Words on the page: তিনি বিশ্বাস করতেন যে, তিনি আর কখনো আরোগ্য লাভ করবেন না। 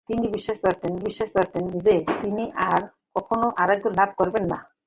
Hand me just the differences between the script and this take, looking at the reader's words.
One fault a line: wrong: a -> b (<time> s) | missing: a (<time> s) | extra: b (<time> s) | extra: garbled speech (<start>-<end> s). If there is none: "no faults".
extra: বিশ্বাস করতেন (1.0 s)